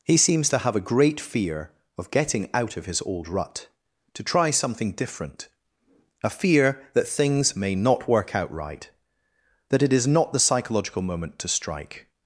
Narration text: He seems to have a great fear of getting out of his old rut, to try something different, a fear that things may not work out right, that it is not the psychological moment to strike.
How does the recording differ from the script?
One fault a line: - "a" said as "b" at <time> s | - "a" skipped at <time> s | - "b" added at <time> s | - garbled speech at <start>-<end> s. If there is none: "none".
none